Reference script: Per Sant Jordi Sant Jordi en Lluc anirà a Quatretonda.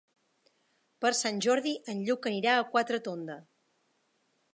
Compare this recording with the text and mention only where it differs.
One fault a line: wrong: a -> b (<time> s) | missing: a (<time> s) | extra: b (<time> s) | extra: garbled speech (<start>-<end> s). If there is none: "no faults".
missing: Sant Jordi (1.7 s)